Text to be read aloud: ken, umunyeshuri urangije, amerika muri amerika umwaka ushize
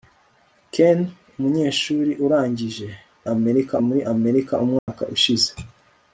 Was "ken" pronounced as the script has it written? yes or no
yes